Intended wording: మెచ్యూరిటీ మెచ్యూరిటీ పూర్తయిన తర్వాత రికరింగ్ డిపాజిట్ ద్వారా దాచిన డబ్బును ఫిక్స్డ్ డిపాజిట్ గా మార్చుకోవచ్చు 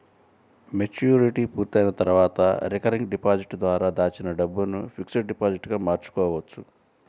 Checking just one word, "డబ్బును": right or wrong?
right